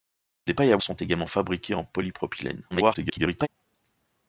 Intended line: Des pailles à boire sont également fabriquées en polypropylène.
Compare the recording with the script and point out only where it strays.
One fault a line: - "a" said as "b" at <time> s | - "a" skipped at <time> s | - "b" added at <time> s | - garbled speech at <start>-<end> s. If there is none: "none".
- "boire" skipped at 0.8 s
- garbled speech at 2.7-3.5 s